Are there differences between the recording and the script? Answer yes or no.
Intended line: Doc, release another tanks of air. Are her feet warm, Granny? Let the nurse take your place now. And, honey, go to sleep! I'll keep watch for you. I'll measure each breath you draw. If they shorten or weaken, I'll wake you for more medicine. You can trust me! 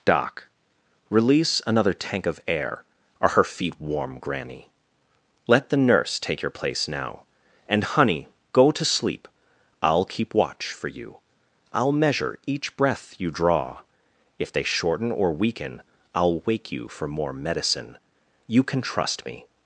yes